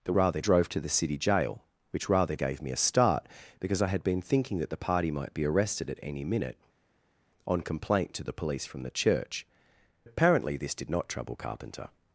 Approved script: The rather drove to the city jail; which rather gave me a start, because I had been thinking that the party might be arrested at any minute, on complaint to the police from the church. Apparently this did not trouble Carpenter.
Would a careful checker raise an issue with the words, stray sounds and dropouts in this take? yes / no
no